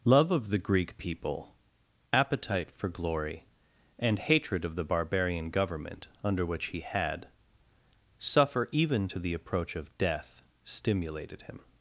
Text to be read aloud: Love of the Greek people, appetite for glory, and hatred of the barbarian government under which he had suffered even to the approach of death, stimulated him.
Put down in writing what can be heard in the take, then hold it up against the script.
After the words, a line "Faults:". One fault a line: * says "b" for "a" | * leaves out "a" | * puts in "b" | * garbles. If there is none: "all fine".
Love of the Greek people, appetite for glory, and hatred of the barbarian government under which he had suffer even to the approach of death, stimulated him.
Faults:
* says "suffer" for "suffered"